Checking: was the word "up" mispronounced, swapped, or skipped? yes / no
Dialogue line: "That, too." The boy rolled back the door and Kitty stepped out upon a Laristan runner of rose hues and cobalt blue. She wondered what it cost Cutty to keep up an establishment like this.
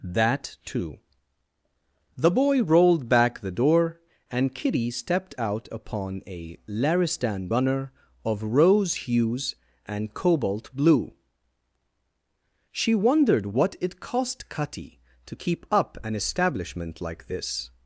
no